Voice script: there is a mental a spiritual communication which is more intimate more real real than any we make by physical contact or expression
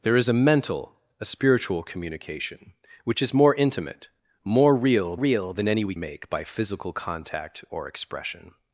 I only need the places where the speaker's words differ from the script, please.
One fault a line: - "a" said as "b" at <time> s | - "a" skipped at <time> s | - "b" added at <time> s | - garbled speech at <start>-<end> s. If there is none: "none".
none